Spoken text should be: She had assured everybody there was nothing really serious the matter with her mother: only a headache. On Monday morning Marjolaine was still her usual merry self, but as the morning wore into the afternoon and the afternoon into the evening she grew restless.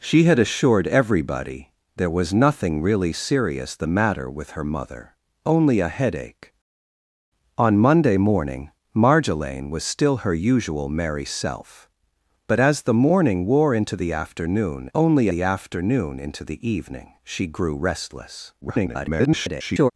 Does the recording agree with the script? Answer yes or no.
no